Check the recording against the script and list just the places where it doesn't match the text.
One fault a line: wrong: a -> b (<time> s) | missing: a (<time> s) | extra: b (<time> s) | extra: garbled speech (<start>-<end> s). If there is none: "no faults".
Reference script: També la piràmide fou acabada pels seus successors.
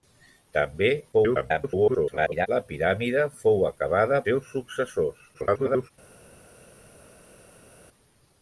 extra: garbled speech (1.1-2.5 s)
missing: pels (4.2 s)
extra: garbled speech (5.3-5.9 s)